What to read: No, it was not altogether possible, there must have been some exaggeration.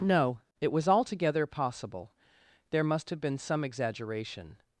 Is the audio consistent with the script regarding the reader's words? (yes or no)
no